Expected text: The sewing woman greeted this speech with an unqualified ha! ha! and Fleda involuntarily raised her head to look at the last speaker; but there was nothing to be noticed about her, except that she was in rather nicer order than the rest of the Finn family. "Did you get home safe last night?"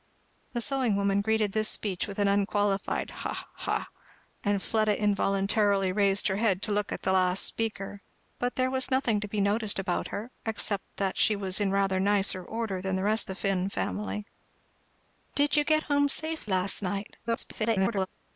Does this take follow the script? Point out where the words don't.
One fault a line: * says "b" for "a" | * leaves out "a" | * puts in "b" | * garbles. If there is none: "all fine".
* leaves out "of"
* garbles